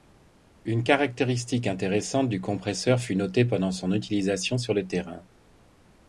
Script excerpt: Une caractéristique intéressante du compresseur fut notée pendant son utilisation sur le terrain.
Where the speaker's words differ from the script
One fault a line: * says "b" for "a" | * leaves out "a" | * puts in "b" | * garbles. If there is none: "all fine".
all fine